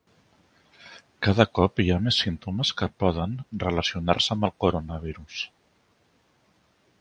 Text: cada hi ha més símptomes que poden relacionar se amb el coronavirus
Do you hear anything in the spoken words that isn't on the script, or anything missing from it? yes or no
yes